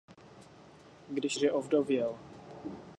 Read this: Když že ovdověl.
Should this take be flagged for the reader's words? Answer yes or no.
no